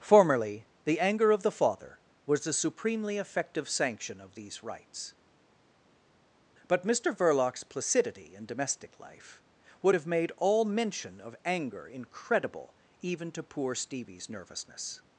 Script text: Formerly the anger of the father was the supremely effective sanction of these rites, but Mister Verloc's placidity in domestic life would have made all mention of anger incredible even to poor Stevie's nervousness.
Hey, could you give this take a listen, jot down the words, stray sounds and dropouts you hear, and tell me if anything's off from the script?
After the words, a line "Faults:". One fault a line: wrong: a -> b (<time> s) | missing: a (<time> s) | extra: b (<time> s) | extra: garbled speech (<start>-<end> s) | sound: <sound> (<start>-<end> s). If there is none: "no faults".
Formerly the anger of the father was the supremely effective sanction of these rites, but Mister Verloc's placidity in domestic life would have made all mention of anger incredible even to poor Stevie's nervousness.
Faults:
no faults